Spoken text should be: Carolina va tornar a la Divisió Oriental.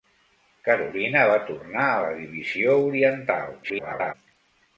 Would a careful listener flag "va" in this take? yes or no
no